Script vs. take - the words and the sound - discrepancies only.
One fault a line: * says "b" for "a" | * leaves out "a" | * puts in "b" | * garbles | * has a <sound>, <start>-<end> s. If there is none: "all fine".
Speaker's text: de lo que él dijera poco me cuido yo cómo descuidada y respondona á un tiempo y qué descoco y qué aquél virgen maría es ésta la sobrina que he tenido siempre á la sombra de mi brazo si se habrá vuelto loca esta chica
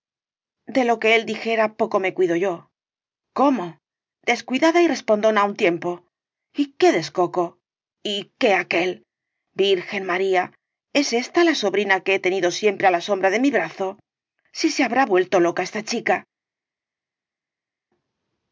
all fine